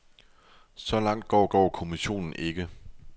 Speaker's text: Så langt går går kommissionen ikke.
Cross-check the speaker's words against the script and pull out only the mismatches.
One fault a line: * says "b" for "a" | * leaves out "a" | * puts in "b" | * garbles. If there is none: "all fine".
all fine